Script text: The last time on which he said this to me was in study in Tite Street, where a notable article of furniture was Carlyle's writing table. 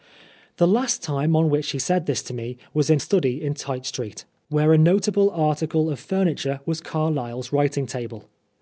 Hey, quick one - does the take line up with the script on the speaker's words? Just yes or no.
yes